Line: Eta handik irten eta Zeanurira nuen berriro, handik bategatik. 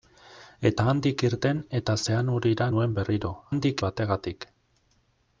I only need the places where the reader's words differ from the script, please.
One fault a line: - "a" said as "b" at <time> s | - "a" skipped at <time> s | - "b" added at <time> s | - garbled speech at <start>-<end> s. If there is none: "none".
none